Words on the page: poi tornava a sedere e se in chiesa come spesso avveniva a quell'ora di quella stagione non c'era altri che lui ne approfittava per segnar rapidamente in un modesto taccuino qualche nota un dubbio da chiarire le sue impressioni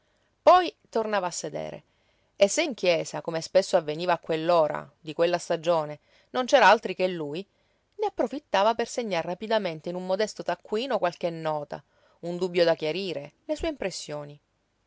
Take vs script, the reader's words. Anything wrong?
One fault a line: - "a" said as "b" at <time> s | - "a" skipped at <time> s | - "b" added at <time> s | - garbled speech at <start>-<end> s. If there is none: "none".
none